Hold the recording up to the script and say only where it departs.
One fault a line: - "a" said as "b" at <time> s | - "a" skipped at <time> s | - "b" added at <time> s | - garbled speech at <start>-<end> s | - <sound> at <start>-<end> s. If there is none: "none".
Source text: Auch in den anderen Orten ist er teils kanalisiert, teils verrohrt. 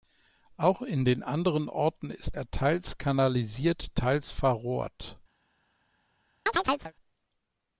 - chirp at 6.5-6.9 s